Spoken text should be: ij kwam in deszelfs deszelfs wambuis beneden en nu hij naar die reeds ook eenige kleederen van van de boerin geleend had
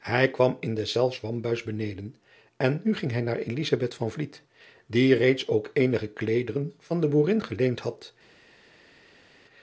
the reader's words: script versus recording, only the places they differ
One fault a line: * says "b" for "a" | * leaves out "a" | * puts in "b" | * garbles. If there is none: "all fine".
* leaves out "deszelfs"
* puts in "ging"
* leaves out "van"